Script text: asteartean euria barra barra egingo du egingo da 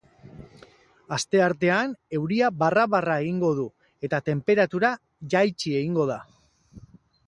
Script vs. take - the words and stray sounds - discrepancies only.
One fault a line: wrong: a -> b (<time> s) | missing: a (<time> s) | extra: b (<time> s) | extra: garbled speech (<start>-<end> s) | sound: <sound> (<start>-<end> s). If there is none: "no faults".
extra: eta tenperatura jaitsi (4.1 s)